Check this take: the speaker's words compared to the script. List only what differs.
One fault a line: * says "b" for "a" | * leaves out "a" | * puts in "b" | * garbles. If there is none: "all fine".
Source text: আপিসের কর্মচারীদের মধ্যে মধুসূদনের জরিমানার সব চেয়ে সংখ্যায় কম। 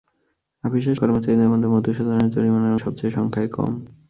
all fine